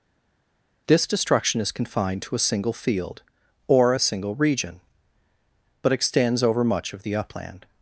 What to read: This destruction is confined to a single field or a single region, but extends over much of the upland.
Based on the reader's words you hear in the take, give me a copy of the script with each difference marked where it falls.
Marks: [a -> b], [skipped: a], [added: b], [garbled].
This destruction is confined to a single field or a single region, but extends over much of the upland.